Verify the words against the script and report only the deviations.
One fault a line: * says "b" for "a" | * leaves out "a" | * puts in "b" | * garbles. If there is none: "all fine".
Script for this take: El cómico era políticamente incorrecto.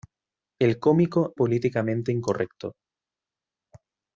* leaves out "era"